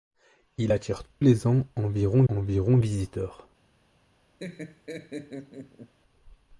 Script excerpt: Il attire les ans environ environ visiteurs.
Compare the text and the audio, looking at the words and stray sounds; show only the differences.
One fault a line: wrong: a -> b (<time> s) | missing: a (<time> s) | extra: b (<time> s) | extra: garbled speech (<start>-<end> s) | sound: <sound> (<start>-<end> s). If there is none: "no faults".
sound: laugh (4.4-5.9 s)